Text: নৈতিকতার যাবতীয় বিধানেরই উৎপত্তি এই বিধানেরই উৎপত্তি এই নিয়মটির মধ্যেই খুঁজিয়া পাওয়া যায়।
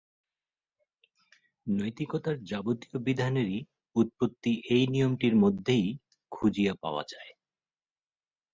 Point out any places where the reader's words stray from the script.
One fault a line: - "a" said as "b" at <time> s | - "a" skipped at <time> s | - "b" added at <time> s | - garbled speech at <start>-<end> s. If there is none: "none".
- "বিধানেরই উৎপত্তি এই" skipped at 4.8 s